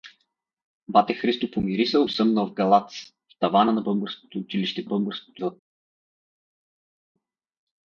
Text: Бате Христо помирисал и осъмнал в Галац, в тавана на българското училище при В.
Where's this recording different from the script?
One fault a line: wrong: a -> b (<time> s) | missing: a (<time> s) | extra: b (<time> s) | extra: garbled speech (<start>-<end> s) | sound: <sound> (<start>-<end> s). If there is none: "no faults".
missing: и (2.1 s)
wrong: при -> българското (4.8 s)